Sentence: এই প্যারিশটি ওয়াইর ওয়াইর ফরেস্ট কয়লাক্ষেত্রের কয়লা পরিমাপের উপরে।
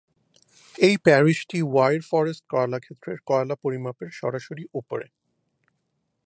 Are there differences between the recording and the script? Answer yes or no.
yes